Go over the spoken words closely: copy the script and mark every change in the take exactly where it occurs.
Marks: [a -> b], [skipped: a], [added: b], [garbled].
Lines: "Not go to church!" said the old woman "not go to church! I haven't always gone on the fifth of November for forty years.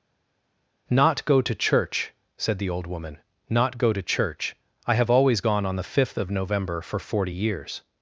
"Not go to church!" said the old woman "not go to church! I [haven't -> have] always gone on the fifth of November for forty years.